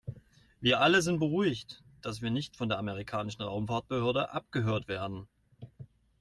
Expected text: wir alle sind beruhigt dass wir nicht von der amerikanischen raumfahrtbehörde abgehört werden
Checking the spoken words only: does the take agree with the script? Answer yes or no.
yes